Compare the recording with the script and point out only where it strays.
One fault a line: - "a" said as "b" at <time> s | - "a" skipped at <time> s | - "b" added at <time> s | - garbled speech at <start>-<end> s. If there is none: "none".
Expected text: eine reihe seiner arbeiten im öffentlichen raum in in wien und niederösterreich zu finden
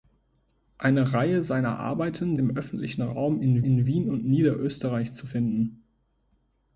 none